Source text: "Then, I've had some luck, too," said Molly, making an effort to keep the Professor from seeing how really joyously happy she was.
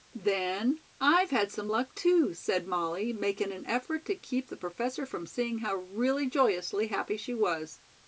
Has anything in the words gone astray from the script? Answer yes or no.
no